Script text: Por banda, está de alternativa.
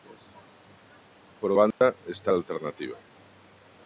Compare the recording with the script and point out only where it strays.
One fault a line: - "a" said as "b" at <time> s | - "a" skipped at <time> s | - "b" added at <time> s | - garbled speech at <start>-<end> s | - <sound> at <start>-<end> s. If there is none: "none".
- dropout at 1.7-1.8 s